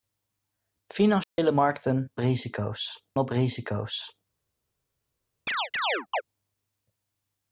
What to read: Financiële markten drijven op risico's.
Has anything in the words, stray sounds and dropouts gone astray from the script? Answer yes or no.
yes